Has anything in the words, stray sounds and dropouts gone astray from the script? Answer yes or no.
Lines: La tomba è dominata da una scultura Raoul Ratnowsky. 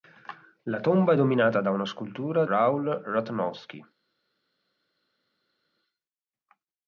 no